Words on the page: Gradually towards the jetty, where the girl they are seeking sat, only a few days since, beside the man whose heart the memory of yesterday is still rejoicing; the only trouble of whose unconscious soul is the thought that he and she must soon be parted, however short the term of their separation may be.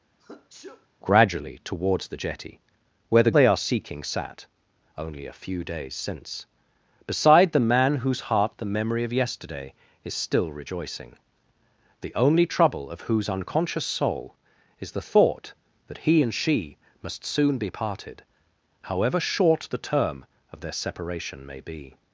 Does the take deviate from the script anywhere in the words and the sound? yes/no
yes